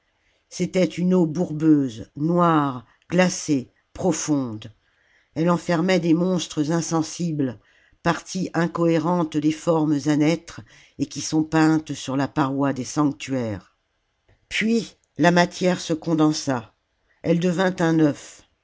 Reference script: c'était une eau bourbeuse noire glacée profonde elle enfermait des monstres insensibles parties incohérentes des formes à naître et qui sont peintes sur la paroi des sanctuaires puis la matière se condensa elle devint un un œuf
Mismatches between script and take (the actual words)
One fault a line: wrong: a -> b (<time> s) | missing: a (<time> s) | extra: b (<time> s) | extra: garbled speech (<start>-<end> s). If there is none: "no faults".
missing: un (18.0 s)